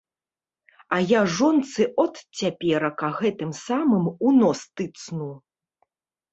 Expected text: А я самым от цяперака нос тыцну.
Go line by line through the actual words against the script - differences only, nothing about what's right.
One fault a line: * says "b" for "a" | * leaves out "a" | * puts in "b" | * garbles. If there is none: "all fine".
* says "жонцы" for "самым"
* puts in "гэтым самым у"